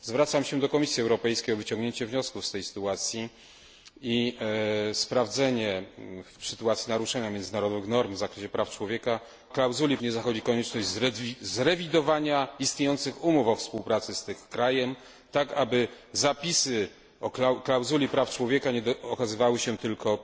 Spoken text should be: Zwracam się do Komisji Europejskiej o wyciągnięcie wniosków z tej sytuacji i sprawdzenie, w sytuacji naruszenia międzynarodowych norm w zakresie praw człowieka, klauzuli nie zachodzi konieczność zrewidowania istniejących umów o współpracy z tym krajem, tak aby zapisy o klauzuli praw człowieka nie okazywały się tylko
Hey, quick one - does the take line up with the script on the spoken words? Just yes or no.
yes